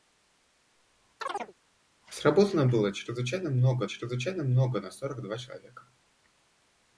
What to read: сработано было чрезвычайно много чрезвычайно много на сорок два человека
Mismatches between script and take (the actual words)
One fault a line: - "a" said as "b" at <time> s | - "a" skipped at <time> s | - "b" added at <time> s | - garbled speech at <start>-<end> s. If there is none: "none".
none